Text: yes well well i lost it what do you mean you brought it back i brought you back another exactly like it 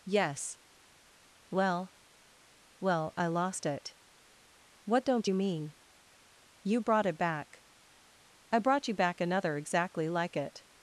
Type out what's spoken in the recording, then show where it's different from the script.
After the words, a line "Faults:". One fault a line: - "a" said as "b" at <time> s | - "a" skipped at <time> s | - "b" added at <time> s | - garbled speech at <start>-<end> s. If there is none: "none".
yes well well i lost it what don't you mean you brought it back i brought you back another exactly like it
Faults:
- "do" said as "don't" at 5.0 s